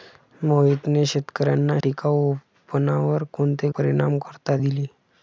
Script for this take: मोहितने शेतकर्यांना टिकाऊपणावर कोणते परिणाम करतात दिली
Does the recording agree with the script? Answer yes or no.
yes